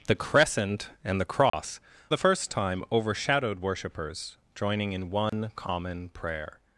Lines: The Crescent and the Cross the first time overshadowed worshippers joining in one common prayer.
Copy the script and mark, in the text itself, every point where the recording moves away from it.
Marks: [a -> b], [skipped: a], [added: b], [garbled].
The Crescent and the Cross the first time overshadowed worshippers joining in one common prayer.